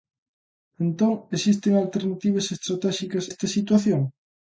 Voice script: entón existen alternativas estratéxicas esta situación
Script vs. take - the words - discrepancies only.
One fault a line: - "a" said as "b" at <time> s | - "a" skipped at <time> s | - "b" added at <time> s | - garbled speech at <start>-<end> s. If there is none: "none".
none